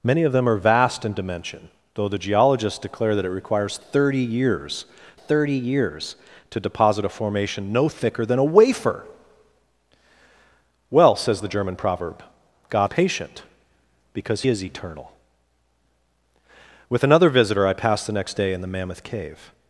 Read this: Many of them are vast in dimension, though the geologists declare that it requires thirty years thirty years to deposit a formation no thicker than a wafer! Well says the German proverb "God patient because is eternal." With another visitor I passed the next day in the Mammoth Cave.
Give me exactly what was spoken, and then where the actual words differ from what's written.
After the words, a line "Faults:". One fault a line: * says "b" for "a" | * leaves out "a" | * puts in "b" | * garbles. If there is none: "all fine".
Many of them are vast in dimension, though the geologists declare that it requires thirty years thirty years to deposit a formation no thicker than a wafer! Well says the German proverb "God patient because is eternal." With another visitor I passed the next day in the Mammoth Cave.
Faults:
all fine